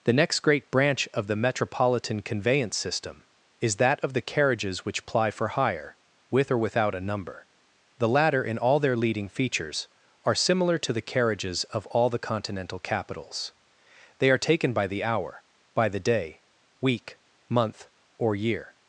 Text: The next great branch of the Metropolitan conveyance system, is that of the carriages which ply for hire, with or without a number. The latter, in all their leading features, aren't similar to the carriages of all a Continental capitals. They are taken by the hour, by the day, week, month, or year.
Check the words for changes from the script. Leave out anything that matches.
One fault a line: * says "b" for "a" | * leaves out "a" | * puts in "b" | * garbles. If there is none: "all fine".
* says "are" for "aren't"
* says "the" for "a"